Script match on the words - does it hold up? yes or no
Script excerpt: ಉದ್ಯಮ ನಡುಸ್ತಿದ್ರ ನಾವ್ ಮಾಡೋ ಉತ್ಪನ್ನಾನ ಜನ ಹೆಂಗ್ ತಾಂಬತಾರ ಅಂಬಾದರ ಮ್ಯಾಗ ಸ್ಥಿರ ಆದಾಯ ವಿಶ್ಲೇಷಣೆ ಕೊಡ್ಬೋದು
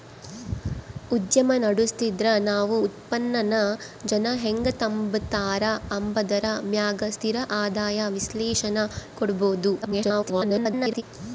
no